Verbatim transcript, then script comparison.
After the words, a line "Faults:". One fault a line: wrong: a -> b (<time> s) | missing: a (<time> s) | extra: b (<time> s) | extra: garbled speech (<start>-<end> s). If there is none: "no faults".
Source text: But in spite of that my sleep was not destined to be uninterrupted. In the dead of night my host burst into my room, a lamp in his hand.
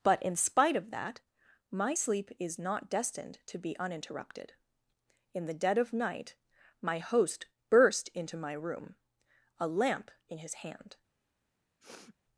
But in spite of that my sleep is not destined to be uninterrupted. In the dead of night my host burst into my room, a lamp in his hand.
Faults:
wrong: was -> is (2.4 s)